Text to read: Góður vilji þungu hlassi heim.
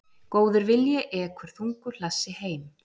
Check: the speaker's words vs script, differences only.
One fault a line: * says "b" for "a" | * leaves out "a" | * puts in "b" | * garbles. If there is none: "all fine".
* puts in "ekur"